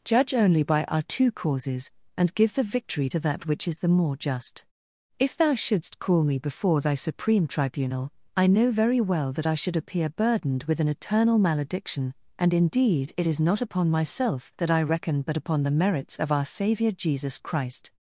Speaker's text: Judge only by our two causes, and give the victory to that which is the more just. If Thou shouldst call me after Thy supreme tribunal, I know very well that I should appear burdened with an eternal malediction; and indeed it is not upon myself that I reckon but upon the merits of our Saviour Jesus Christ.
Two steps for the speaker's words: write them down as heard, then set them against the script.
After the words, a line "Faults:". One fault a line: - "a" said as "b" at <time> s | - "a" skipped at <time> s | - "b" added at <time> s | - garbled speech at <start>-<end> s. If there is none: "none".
Judge only by our two causes, and give the victory to that which is the more just. If Thou shouldst call me before Thy supreme tribunal, I know very well that I should appear burdened with an eternal malediction; and indeed it is not upon myself that I reckon but upon the merits of our Saviour Jesus Christ.
Faults:
- "after" said as "before" at 6.4 s